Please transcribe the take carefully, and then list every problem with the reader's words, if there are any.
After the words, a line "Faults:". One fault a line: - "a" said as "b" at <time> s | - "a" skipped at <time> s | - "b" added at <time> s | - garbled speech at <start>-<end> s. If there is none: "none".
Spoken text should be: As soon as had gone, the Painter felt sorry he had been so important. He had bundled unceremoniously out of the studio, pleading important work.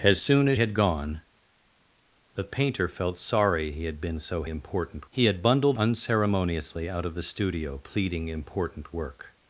As soon as had gone, the Painter felt sorry he had been so important. He had bundled unceremoniously out of the studio, pleading important work.
Faults:
none